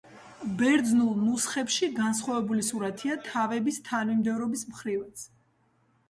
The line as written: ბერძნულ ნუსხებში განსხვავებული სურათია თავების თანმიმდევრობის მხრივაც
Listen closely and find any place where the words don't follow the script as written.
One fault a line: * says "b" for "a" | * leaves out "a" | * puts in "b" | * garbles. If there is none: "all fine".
all fine